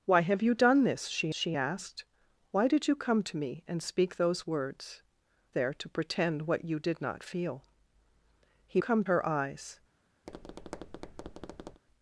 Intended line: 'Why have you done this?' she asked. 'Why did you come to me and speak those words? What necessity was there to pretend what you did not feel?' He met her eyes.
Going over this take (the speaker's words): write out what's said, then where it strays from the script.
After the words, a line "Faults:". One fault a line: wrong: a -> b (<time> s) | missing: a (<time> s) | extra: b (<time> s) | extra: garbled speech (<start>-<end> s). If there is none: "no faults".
'Why have you done this?' she she asked. 'Why did you come to me and speak those words? There to pretend what you did not feel?' He come her eyes.
Faults:
extra: she (1.3 s)
missing: What necessity was (5.0 s)
wrong: met -> come (8.8 s)